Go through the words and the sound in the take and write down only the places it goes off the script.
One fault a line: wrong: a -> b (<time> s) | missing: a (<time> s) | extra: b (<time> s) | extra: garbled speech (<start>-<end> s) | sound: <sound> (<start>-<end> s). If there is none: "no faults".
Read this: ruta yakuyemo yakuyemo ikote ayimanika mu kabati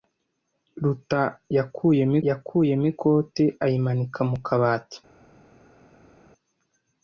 no faults